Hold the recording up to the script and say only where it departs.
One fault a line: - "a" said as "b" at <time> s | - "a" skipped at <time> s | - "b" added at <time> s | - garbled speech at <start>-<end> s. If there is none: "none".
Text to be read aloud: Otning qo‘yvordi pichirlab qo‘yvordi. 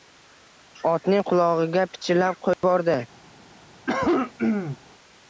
- "qo‘yvordi" said as "qulog‘iga" at 1.3 s